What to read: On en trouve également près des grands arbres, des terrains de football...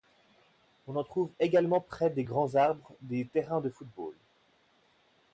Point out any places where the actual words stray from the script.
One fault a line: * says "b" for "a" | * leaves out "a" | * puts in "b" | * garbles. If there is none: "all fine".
all fine